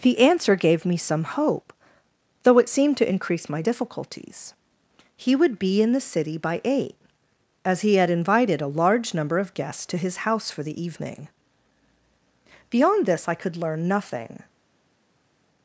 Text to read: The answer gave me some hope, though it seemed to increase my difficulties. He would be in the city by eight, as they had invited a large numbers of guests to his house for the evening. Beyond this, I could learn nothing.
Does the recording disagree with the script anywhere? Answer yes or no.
yes